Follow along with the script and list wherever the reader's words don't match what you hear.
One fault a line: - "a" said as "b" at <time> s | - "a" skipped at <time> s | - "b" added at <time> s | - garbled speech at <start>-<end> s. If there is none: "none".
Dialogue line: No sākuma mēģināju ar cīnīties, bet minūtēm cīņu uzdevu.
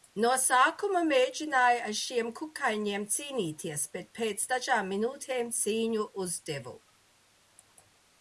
- "šiem kukaiņiem" added at 2.0 s
- "pēc dažām" added at 4.2 s